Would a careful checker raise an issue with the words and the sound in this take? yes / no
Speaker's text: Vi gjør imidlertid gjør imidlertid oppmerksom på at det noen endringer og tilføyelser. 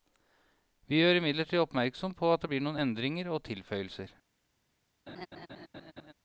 yes